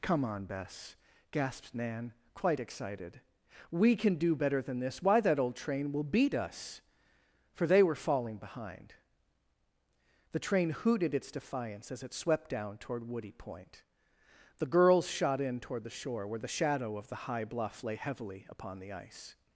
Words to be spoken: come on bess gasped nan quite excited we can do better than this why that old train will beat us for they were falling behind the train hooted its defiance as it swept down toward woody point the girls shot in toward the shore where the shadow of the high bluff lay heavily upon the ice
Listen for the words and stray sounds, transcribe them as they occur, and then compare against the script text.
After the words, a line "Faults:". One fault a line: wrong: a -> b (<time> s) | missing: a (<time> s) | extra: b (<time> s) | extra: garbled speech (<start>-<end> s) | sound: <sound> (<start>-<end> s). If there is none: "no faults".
come on bess gasped nan quite excited we can do better than this why that old train will beat us for they were falling behind the train hooted its defiance as it swept down toward woody point the girls shot in toward the shore where the shadow of the high bluff lay heavily upon the ice
Faults:
no faults